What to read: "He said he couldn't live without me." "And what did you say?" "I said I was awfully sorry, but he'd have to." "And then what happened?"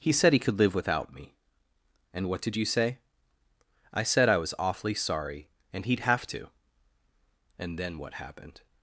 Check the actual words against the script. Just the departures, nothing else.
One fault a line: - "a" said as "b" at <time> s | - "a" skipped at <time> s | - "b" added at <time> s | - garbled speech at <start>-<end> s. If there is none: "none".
- "couldn't" said as "could" at 0.4 s
- "but" said as "and" at 5.7 s